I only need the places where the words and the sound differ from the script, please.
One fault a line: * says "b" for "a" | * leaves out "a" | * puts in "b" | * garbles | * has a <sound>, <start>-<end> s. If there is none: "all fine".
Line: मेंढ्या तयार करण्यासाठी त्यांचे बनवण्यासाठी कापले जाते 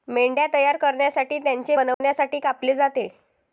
* has a dropout, 1.9-2.0 s